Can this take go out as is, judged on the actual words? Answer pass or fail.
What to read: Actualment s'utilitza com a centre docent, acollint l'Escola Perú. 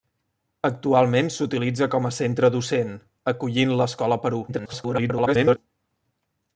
fail